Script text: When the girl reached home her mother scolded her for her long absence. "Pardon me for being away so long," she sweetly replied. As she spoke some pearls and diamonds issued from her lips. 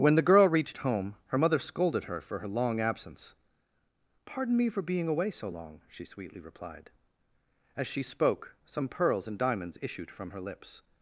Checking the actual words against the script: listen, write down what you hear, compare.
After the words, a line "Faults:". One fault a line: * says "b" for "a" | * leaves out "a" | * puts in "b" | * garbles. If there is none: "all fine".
When the girl reached home her mother scolded her for her long absence. "Pardon me for being away so long," she sweetly replied. As she spoke some pearls and diamonds issued from her lips.
Faults:
all fine